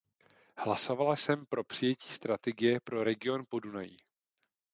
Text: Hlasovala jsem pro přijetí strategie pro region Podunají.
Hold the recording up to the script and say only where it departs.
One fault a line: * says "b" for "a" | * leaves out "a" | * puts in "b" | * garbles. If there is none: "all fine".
all fine